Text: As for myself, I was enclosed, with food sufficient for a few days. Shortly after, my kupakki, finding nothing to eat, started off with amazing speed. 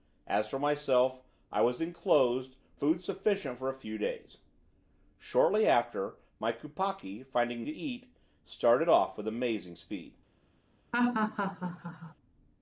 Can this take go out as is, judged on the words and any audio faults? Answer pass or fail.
fail